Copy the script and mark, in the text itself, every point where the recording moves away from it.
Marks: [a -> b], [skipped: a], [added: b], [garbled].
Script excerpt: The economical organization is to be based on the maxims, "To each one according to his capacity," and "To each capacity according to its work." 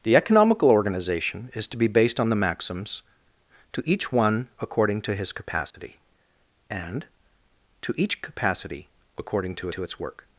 The economical organization is to be based on the maxims, "To each one according to his capacity," and "To each capacity according to [added: to] its work."